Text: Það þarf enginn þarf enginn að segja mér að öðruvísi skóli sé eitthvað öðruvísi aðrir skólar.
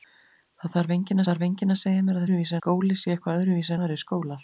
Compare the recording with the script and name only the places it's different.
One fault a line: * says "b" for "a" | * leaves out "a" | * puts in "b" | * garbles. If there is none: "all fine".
all fine